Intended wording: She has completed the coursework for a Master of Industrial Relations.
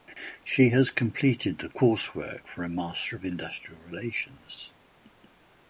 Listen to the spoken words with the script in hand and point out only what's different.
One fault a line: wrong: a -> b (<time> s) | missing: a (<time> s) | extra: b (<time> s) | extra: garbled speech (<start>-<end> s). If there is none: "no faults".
no faults